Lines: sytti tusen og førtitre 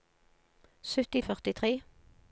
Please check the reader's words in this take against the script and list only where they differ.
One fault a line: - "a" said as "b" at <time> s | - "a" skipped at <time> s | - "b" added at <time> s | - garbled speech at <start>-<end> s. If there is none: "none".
- "tusen" skipped at 1.2 s